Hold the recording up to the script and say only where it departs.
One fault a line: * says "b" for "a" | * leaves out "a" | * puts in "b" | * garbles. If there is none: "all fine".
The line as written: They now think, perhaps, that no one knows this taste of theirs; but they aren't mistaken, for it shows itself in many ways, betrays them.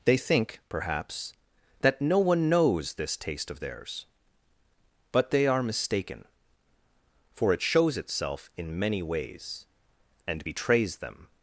* leaves out "now"
* says "are" for "aren't"
* puts in "and"